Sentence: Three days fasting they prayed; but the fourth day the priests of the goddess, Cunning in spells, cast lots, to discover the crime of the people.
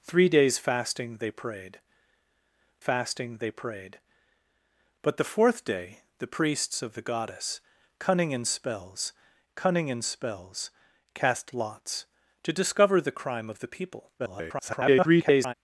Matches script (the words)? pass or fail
fail